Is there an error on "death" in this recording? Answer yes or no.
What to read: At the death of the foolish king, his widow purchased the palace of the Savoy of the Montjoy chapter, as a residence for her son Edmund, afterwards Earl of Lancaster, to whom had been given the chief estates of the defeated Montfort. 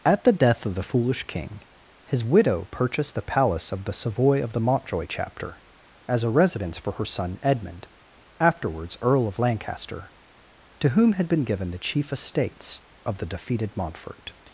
no